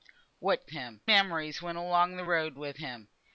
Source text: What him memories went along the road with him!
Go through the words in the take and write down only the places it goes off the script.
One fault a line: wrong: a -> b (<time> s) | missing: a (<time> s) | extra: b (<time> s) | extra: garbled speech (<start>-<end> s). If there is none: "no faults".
no faults